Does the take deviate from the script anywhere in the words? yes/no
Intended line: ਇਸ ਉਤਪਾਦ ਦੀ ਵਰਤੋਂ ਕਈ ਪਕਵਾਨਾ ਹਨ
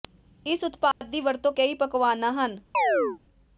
no